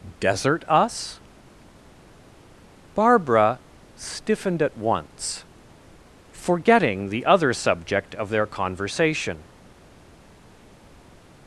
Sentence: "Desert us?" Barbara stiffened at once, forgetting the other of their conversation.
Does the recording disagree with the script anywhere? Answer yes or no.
yes